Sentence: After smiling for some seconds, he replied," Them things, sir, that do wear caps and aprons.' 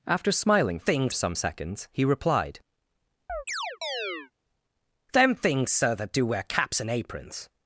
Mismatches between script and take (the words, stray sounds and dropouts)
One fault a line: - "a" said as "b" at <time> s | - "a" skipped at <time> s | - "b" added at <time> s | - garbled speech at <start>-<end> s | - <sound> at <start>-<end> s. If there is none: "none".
- "for" said as "things" at 0.8 s
- chirp at 3.3-4.3 s